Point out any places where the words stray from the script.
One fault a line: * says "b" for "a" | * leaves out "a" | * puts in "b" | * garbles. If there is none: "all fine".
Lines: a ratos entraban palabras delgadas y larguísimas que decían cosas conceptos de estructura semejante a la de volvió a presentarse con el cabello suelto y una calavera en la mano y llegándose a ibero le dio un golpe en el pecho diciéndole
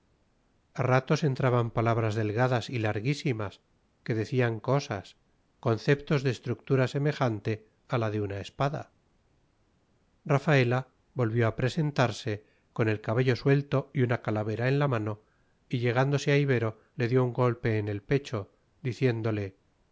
* puts in "una espada rafaela"